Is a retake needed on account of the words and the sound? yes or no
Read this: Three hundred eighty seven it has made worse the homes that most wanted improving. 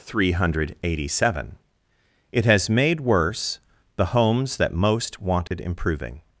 yes